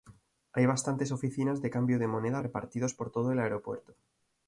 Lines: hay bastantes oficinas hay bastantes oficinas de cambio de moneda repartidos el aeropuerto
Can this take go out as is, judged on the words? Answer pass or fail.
fail